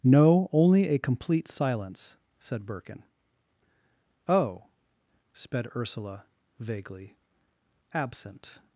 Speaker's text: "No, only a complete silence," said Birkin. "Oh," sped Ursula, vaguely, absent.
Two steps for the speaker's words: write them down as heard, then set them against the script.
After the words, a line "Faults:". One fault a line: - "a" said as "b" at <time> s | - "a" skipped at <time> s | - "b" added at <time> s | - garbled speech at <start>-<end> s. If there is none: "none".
"No, only a complete silence," said Birkin. "Oh," sped Ursula, vaguely, absent.
Faults:
none